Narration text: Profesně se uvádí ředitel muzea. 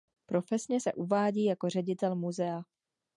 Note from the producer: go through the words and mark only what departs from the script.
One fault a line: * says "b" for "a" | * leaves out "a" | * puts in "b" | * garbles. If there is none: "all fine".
* puts in "jako"